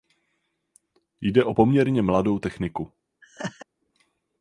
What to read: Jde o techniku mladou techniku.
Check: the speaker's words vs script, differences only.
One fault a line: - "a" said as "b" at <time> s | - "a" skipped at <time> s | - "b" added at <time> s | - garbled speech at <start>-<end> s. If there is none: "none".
- "techniku" said as "poměrně" at 1.5 s